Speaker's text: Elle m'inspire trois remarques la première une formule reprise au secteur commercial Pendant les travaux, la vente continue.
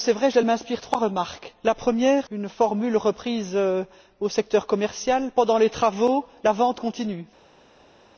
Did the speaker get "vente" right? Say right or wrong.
right